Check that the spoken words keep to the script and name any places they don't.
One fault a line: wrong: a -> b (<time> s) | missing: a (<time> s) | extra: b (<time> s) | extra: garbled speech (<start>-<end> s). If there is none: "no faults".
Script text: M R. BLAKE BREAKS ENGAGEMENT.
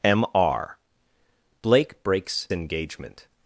no faults